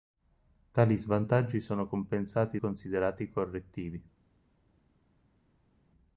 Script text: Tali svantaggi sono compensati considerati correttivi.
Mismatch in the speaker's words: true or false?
false